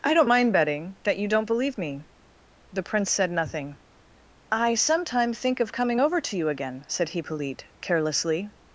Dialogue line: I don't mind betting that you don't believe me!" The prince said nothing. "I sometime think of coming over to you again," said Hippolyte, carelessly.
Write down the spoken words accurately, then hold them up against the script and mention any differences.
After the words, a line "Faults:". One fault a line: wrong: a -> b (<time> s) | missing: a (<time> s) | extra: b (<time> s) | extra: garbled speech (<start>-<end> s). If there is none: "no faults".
I don't mind betting that you don't believe me!" The prince said nothing. "I sometime think of coming over to you again," said Hippolyte, carelessly.
Faults:
no faults